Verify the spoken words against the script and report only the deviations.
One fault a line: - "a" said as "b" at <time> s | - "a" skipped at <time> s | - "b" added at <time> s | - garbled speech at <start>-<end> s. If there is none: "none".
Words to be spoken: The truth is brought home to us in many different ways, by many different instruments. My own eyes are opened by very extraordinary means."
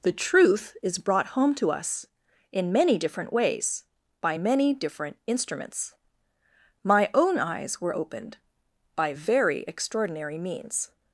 - "are" said as "were" at 7.8 s